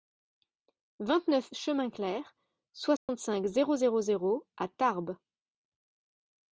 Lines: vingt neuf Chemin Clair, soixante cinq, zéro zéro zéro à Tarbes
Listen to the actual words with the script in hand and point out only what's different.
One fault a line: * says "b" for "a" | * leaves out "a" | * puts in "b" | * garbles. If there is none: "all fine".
all fine